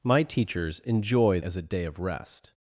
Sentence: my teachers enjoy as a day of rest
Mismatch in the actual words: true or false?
false